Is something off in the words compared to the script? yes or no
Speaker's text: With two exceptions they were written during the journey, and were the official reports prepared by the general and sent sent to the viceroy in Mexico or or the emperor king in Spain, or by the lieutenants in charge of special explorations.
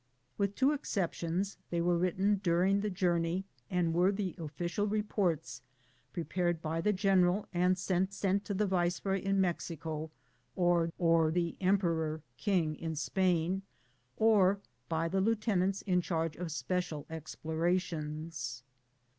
no